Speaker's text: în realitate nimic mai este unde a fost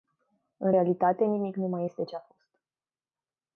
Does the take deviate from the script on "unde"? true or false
true